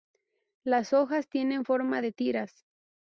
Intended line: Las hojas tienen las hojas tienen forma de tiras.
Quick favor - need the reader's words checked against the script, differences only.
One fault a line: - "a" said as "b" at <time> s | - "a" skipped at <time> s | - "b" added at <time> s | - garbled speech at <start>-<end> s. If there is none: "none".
- "las hojas tienen" skipped at 1.6 s